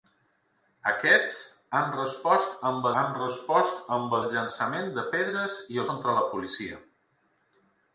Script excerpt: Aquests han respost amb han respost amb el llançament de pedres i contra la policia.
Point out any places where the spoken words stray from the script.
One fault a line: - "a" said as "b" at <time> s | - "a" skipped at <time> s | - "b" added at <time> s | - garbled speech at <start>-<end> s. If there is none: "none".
none